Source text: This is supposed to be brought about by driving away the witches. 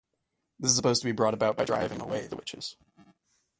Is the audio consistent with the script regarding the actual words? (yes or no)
yes